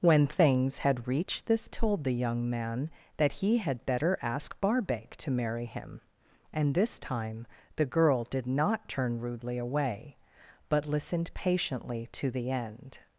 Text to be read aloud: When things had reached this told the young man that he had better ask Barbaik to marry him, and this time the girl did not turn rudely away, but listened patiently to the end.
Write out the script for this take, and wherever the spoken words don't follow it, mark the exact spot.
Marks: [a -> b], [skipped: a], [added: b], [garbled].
When things had reached this told the young man that he had better ask Barbaik to marry him, and this time the girl did not turn rudely away, but listened patiently to the end.